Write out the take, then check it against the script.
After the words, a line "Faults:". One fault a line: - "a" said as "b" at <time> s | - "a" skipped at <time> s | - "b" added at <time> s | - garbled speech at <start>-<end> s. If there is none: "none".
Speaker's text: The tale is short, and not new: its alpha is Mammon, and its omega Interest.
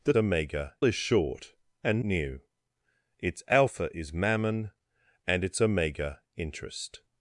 The omega is short, and new: its alpha is Mammon, and its omega Interest.
Faults:
- "tale" said as "omega" at 0.2 s
- "not" skipped at 2.0 s